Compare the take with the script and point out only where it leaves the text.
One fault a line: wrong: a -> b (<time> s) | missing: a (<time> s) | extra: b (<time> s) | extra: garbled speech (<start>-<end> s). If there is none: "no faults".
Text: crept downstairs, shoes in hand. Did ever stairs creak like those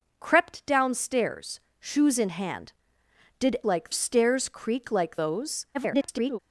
wrong: ever -> like (3.6 s)
extra: garbled speech (5.7-6.4 s)